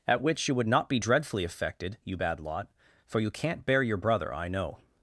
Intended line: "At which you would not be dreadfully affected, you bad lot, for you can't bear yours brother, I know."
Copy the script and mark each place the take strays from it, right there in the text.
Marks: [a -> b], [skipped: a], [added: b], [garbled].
"At which you would not be dreadfully affected, you bad lot, for you can't bear [yours -> your] brother, I know."